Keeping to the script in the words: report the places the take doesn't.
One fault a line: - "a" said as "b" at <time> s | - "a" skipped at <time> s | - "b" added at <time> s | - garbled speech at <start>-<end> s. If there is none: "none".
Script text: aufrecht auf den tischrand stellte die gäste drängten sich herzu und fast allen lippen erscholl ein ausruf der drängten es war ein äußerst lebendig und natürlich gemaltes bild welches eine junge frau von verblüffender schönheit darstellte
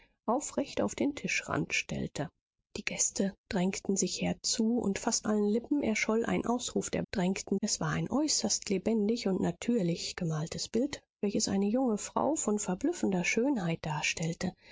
none